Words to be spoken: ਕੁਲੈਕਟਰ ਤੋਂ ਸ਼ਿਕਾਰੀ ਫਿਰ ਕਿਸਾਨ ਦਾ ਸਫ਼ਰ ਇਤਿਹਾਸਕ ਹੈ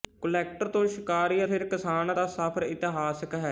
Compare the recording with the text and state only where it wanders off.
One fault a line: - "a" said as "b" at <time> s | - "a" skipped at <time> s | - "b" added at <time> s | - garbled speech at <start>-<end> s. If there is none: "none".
none